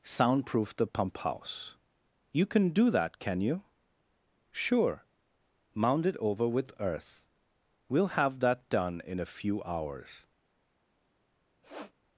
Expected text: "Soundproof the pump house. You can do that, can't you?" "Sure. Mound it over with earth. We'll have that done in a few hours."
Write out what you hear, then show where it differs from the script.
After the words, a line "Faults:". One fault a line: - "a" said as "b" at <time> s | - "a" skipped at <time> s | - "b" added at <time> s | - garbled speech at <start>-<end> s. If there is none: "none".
"Soundproof the pump house. You can do that, can you?" "Sure. Mound it over with earth. We'll have that done in a few hours."
Faults:
- "can't" said as "can" at 3.2 s